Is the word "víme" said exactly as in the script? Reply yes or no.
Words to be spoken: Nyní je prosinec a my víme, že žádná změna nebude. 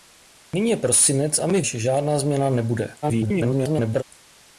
no